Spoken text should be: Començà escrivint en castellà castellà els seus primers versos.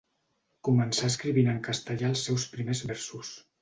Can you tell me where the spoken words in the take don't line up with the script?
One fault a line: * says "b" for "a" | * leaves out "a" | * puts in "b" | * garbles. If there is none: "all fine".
* leaves out "castellà"